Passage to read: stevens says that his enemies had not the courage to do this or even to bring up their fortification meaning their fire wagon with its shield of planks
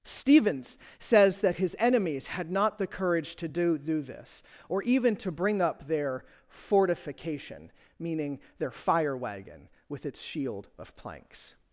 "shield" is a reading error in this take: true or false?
false